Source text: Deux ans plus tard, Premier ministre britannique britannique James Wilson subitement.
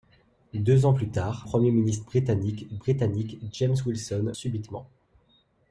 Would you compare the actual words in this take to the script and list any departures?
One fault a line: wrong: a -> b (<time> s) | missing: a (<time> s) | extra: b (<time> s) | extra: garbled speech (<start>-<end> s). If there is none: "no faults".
no faults